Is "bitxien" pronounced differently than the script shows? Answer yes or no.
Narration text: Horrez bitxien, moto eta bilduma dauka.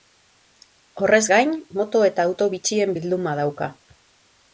yes